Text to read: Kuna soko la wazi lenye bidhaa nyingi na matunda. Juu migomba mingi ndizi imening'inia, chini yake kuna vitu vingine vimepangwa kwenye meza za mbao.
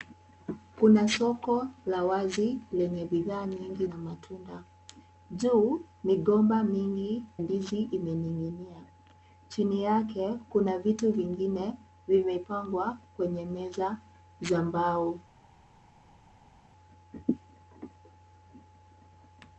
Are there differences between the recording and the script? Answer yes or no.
no